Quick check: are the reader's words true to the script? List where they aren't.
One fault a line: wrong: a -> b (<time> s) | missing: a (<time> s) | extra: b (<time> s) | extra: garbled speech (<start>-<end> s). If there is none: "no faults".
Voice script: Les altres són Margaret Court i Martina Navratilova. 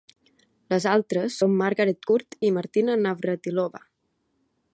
no faults